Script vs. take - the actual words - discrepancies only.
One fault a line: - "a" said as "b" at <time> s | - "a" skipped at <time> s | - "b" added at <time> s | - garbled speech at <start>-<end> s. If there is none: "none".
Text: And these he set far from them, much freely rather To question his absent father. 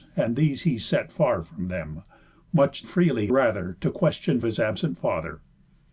none